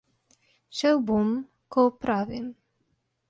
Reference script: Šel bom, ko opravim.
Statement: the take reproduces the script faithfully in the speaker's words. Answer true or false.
true